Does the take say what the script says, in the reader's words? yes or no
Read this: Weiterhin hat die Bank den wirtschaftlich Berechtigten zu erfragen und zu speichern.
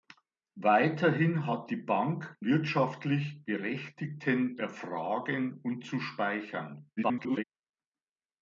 no